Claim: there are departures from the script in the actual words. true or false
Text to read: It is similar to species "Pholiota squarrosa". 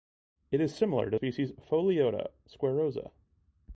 false